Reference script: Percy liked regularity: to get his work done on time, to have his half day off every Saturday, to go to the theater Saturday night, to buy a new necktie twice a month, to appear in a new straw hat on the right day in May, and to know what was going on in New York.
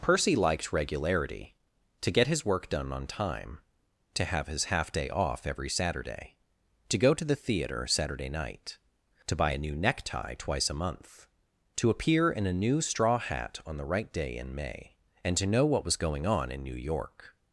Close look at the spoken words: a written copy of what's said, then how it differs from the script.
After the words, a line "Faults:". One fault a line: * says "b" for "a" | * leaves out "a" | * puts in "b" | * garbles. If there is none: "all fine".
Percy liked regularity: to get his work done on time, to have his half day off every Saturday, to go to the theater Saturday night, to buy a new necktie twice a month, to appear in a new straw hat on the right day in May, and to know what was going on in New York.
Faults:
all fine